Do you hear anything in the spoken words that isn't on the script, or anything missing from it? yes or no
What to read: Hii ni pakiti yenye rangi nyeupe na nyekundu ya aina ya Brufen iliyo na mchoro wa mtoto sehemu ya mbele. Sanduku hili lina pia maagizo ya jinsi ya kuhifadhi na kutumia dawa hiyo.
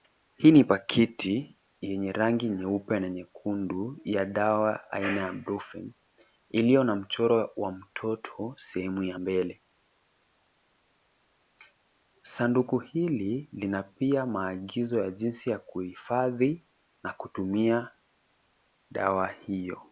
yes